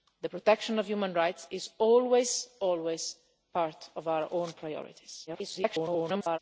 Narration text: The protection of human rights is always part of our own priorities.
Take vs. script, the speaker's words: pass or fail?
fail